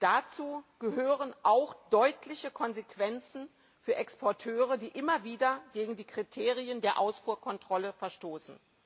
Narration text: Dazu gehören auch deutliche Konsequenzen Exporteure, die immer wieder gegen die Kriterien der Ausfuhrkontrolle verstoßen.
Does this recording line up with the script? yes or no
no